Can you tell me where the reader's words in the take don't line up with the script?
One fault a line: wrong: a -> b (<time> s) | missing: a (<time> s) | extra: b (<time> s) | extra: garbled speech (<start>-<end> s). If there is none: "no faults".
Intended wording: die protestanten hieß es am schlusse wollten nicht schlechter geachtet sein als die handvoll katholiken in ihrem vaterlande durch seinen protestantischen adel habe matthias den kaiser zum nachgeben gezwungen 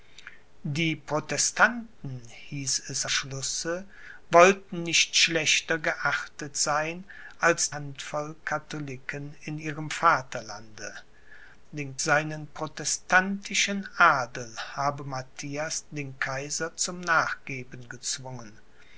missing: am (3.0 s)
missing: die (7.7 s)
wrong: durch -> den (11.7 s)